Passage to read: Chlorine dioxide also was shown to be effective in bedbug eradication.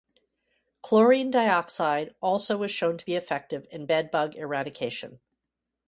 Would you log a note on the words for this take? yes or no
no